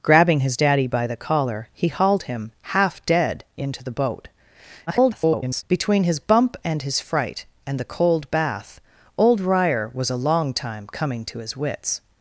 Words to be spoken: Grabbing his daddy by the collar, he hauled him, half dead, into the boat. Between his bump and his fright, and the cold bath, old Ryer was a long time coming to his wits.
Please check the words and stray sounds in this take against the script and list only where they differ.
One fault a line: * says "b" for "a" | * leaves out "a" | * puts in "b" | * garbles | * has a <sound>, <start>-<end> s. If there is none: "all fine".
* garbles